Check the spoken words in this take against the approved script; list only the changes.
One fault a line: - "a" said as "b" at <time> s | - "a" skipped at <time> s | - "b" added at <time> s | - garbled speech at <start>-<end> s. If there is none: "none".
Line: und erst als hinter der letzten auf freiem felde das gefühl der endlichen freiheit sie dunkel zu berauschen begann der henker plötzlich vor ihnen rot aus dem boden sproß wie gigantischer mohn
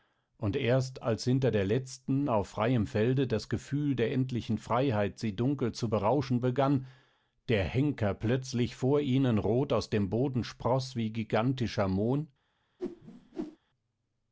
none